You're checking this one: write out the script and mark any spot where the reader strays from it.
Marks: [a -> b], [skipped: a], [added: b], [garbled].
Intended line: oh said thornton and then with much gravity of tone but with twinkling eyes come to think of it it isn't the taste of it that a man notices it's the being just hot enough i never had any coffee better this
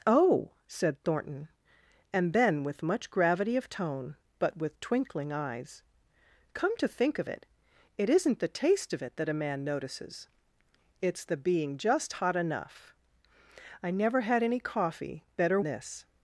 oh said thornton and then with much gravity of tone but with twinkling eyes come to think of it it isn't the taste of it that a man notices it's the being just hot enough i never had any coffee better this